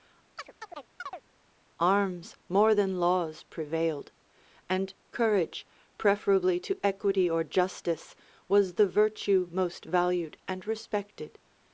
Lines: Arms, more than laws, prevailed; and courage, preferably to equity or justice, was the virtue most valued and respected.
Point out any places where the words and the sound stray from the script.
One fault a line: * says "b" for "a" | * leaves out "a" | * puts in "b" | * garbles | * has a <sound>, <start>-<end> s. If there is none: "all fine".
* has a chirp, 0.4-1.2 s